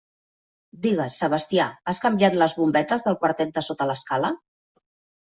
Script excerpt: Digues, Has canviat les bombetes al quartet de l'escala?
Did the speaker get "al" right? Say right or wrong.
wrong